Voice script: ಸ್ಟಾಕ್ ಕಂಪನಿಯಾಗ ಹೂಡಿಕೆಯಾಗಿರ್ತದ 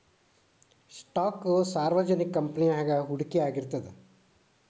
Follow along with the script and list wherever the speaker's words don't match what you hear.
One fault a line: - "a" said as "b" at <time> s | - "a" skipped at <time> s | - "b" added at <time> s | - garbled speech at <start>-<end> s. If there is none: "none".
- "ಸಾರ್ವಜನಿಕ" added at 1.7 s